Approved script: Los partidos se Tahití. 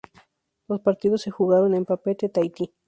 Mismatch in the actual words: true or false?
true